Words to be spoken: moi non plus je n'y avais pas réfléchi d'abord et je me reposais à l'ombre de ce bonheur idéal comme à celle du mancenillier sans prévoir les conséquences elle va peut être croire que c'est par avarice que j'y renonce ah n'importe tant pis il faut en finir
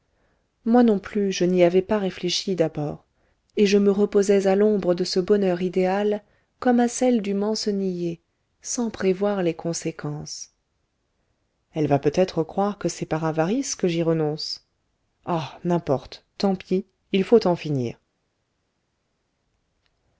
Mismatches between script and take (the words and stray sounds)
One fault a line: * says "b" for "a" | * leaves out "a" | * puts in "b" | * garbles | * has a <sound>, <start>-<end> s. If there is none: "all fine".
all fine